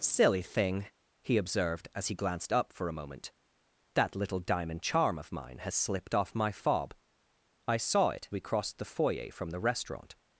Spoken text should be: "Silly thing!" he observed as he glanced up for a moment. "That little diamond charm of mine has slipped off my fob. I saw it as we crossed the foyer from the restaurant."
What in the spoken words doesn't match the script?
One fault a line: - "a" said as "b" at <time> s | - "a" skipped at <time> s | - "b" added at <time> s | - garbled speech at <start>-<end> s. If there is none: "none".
- "as" skipped at 8.3 s